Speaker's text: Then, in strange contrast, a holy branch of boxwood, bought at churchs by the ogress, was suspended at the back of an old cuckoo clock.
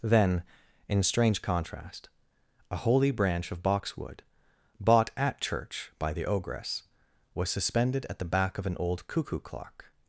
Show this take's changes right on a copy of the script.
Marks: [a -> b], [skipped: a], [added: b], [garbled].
Then, in strange contrast, a holy branch of boxwood, bought at [churchs -> church] by the ogress, was suspended at the back of an old cuckoo clock.